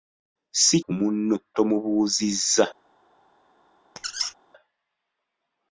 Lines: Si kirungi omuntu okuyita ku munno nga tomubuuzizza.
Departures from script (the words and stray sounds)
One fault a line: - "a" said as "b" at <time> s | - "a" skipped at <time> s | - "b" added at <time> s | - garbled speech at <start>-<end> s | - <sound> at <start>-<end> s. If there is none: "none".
- "kirungi omuntu okuyita" skipped at 0.8 s
- "nga" skipped at 1.4 s
- squeak at 4.0-4.3 s